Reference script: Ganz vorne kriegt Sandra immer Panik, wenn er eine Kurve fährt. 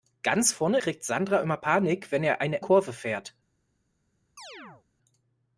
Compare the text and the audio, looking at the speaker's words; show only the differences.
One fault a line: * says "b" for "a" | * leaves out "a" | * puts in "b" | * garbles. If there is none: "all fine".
all fine